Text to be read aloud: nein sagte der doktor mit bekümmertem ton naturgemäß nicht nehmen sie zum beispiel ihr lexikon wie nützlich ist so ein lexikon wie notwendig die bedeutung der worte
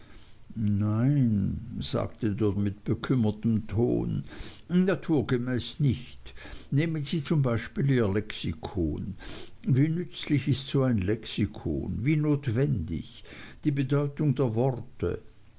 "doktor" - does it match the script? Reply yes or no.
no